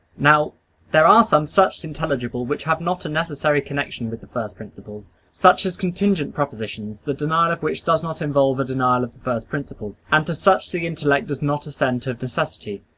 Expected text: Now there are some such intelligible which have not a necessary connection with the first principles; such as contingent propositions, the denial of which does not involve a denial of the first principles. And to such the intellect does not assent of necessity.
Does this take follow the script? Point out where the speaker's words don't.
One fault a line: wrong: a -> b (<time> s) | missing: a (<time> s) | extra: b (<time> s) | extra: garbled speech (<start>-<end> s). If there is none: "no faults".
no faults